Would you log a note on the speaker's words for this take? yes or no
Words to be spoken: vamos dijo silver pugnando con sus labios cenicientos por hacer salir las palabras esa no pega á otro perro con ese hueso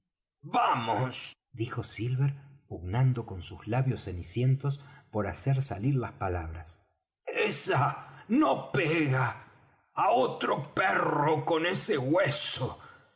no